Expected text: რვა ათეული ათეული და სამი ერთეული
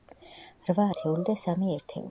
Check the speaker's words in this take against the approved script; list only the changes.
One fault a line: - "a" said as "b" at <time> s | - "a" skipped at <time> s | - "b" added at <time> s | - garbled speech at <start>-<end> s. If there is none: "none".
- "ათეული" skipped at 1.3 s